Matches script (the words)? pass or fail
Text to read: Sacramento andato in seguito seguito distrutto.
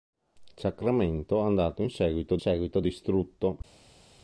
pass